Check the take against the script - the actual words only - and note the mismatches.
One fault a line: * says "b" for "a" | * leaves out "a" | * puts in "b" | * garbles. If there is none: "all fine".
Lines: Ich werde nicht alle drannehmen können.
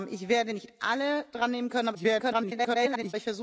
* garbles